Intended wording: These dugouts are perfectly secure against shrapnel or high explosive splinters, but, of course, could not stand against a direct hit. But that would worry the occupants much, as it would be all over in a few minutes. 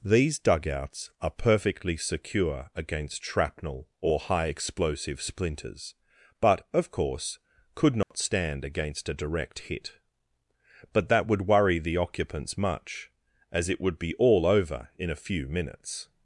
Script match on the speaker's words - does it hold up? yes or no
yes